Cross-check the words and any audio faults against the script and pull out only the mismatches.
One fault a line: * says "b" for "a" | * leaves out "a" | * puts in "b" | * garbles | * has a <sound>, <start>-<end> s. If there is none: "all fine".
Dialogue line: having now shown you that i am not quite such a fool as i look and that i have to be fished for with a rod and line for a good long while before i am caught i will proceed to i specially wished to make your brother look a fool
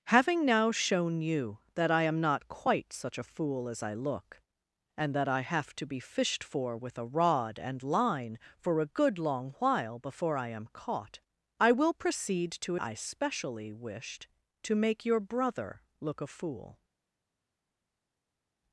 all fine